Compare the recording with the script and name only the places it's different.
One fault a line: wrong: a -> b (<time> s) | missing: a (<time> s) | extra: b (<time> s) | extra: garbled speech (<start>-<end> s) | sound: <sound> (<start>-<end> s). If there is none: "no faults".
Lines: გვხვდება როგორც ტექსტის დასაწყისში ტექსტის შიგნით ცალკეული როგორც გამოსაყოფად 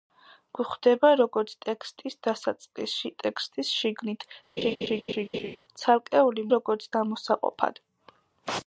sound: laugh (4.6-5.6 s)